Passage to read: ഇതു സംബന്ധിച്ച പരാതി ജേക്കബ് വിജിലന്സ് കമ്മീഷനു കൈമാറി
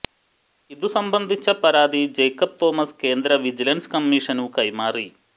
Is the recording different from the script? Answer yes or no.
yes